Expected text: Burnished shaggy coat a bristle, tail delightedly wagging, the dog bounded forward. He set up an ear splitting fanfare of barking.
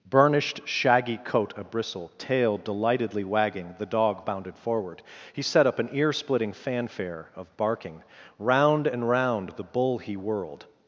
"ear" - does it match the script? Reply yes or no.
yes